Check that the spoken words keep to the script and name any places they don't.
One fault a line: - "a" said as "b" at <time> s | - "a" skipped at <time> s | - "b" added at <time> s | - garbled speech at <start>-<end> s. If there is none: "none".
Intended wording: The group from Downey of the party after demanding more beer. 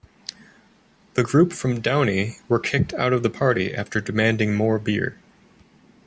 - "were kicked out" added at 2.5 s